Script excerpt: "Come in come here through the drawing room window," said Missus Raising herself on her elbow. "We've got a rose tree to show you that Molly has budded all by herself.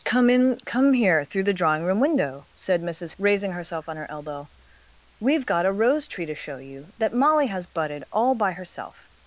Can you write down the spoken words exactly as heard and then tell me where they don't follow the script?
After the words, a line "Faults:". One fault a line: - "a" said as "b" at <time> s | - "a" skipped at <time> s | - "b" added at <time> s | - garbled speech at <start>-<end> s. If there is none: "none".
"Come in come here through the drawing room window," said Missus Raising herself on her elbow. "We've got a rose tree to show you that Molly has budded all by herself.
Faults:
none